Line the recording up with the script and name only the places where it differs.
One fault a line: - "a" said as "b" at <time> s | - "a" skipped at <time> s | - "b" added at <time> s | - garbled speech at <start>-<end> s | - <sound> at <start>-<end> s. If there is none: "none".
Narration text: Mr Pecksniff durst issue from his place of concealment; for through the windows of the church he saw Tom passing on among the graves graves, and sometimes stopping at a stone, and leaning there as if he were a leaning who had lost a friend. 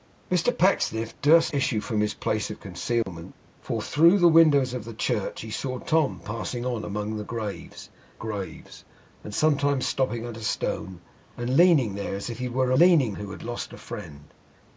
- dropout at 3.0-3.1 s